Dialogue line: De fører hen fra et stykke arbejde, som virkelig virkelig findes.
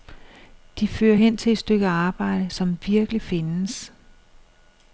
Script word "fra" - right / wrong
wrong